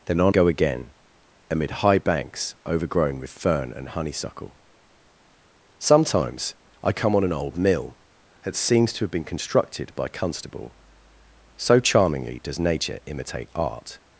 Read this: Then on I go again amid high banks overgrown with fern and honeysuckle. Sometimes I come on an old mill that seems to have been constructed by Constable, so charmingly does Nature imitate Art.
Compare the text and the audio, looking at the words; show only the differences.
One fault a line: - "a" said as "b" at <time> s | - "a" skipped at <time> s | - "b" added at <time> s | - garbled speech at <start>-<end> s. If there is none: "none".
- "I" skipped at 0.3 s